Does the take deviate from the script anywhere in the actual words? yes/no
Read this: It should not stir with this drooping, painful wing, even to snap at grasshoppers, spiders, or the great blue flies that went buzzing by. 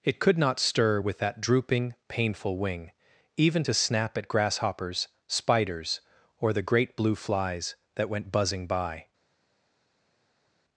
yes